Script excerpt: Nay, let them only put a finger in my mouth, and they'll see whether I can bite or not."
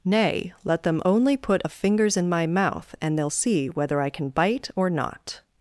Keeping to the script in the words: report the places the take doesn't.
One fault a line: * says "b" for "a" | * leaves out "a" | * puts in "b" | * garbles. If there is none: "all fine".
* says "fingers" for "finger"